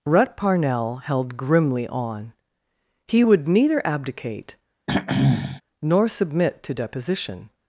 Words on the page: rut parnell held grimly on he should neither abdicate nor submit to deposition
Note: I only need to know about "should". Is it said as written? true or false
false